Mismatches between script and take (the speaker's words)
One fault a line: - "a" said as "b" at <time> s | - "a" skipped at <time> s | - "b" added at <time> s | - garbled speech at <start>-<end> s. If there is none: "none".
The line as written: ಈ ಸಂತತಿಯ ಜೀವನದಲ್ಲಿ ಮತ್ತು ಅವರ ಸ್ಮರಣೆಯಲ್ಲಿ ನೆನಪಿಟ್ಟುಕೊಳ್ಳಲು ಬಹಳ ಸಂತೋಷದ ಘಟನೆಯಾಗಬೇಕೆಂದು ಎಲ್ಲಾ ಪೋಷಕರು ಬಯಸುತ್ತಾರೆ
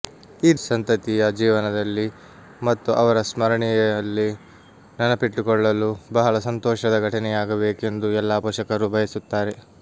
none